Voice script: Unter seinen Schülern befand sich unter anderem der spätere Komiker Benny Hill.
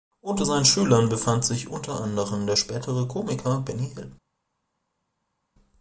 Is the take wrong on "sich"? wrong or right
right